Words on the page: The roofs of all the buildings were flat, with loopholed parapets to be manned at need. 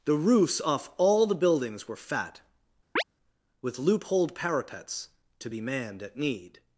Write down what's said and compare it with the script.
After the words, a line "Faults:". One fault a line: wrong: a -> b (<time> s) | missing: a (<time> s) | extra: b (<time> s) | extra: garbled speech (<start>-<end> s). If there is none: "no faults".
The roofs off all the buildings were fat, with loopholed parapets to be manned at need.
Faults:
wrong: of -> off (0.6 s)
wrong: flat -> fat (1.9 s)